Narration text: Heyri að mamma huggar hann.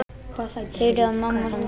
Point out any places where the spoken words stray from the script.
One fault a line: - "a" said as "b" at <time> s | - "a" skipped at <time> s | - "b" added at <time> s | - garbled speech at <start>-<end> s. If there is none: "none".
- "huggar" skipped at 1.5 s